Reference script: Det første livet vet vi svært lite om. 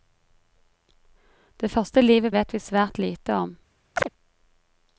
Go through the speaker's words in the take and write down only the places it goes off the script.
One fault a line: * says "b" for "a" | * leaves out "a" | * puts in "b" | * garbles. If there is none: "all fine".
all fine